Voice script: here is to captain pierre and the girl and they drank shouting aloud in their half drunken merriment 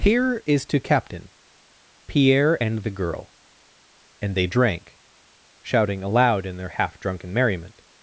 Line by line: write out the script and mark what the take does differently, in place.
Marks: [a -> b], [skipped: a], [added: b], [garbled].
here is to captain pierre and the girl and they drank shouting aloud in their half drunken merriment